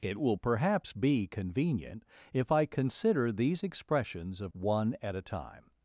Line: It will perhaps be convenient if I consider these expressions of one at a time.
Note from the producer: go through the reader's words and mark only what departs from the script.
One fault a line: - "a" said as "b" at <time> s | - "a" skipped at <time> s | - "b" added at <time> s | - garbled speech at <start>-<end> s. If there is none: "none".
none